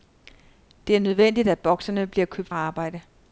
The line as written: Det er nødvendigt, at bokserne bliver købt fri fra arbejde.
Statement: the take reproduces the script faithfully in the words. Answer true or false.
false